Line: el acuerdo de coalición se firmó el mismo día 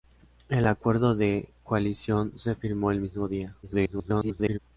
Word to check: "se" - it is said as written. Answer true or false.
true